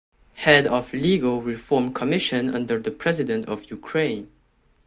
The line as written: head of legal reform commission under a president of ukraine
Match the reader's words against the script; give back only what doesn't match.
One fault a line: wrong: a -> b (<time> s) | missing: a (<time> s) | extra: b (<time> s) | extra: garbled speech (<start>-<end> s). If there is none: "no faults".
wrong: a -> the (2.8 s)